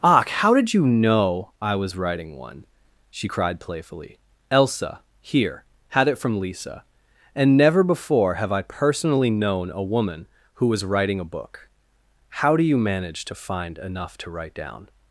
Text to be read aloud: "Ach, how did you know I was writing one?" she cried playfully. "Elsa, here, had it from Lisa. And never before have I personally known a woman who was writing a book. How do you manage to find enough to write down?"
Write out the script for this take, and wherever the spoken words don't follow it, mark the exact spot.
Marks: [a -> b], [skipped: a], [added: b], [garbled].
"Ach, how did you know I was writing one?" she cried playfully. "Elsa, here, had it from Lisa. And never before have I personally known a woman who was writing a book. How do you manage to find enough to write down?"